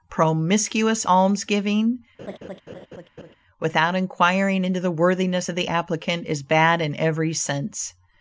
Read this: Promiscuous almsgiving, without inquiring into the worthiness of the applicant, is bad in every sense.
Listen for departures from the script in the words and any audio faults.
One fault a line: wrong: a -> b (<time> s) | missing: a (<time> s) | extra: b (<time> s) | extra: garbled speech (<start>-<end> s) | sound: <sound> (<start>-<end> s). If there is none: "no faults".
sound: laugh (2.2-3.4 s)